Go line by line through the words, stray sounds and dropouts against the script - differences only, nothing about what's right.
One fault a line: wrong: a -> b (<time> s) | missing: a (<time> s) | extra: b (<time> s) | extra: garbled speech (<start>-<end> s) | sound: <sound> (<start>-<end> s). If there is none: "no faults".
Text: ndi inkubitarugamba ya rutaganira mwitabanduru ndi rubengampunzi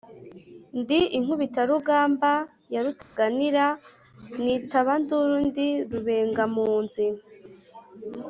sound: dropout (3.0-3.2 s)